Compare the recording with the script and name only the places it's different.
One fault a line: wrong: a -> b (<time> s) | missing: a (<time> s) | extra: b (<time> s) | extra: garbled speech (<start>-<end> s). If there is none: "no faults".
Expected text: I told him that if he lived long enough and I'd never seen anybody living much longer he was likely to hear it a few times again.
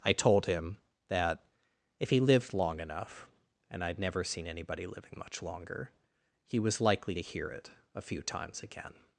no faults